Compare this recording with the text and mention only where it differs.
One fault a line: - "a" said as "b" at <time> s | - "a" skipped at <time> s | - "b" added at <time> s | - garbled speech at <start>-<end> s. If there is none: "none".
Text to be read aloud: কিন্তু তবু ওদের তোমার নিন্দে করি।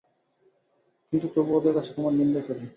- "কাছে" added at 1.8 s